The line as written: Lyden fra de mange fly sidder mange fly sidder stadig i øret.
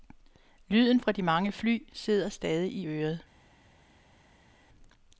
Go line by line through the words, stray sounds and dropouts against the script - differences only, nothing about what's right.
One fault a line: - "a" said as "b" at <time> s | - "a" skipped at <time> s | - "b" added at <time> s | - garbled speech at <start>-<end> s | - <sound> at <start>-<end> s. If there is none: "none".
- "mange fly sidder" skipped at 2.3 s